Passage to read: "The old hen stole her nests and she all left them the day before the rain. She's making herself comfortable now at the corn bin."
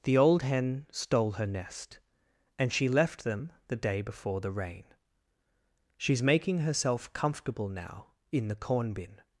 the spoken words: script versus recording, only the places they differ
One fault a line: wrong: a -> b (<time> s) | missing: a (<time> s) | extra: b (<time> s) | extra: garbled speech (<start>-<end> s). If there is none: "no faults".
wrong: nests -> nest (1.4 s)
missing: all (2.9 s)
wrong: at -> in (8.3 s)